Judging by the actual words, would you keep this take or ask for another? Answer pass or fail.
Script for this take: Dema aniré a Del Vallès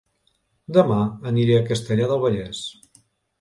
fail